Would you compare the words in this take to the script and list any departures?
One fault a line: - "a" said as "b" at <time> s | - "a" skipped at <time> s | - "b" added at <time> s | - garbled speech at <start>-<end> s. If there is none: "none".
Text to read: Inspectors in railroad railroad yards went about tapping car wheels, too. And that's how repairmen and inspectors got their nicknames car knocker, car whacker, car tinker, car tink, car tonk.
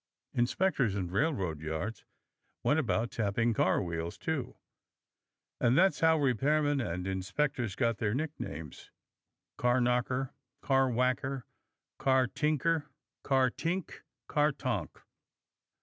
- "railroad" skipped at 1.6 s